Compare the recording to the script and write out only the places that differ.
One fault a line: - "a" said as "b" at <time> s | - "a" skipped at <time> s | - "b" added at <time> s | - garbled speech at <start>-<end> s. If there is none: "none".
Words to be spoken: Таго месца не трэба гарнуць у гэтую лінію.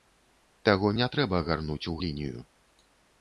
- "месца" skipped at 0.9 s
- "гэтую" skipped at 2.0 s